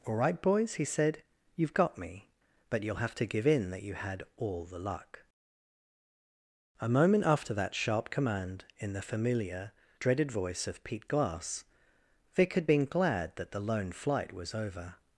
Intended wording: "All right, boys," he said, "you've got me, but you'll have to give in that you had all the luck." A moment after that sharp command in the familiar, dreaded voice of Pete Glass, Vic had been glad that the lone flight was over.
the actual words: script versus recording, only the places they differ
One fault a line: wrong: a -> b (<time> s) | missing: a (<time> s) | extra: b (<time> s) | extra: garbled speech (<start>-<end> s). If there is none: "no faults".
no faults